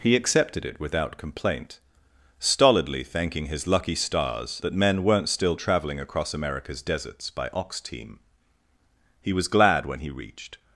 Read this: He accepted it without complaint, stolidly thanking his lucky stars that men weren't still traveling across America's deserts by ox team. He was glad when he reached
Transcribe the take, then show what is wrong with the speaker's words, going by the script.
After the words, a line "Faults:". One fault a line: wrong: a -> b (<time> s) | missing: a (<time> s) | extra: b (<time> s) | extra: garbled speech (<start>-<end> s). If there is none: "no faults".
He accepted it without complaint, stolidly thanking his lucky stars that men weren't still traveling across America's deserts by ox team. He was glad when he reached
Faults:
no faults